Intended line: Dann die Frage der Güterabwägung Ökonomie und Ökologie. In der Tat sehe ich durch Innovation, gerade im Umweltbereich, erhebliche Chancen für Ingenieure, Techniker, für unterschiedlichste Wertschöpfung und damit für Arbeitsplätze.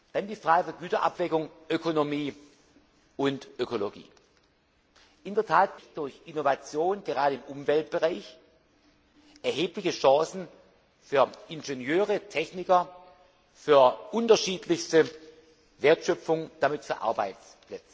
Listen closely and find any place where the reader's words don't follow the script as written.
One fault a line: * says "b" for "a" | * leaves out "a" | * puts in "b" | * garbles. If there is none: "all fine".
* leaves out "sehe"
* leaves out "und"